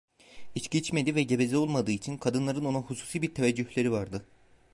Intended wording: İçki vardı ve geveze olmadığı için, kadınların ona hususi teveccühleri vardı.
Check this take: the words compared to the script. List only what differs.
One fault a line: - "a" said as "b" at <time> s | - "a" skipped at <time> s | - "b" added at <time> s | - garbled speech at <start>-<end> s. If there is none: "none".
- "vardı" said as "içmediği" at 0.8 s
- "bir" added at 3.2 s